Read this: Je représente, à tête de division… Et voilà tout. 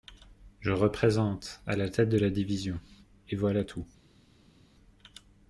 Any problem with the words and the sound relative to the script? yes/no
yes